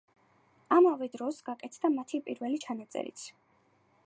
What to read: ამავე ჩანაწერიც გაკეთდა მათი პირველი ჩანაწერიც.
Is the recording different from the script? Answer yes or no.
yes